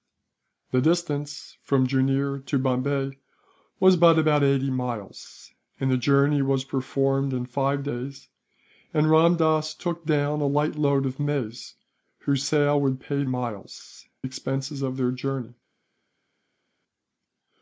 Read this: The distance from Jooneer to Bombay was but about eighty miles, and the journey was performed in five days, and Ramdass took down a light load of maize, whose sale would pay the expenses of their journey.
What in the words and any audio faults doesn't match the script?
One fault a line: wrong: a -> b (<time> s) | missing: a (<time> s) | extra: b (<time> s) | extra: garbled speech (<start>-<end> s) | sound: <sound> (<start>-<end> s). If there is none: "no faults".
wrong: the -> miles (13.2 s)